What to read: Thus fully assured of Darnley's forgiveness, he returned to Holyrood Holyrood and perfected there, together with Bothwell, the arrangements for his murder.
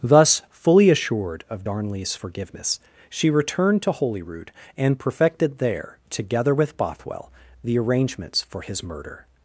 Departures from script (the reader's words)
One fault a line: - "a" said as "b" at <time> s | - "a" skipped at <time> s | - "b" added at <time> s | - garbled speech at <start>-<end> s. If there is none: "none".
- "he" said as "she" at 3.1 s
- "Holyrood" skipped at 4.5 s